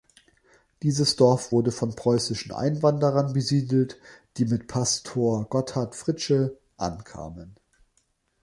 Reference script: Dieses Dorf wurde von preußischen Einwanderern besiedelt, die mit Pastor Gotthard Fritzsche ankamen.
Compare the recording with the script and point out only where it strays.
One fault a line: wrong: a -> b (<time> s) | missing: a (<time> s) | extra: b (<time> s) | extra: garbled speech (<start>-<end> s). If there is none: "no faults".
no faults